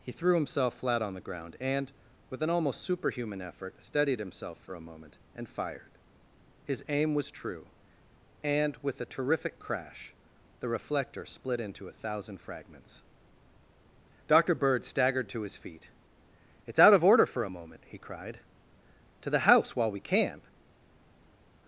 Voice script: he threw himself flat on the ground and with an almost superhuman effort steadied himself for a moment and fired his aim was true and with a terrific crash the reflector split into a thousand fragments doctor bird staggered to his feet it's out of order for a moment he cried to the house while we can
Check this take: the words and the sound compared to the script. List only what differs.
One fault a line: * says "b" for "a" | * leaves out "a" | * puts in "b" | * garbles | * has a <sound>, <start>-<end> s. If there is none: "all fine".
all fine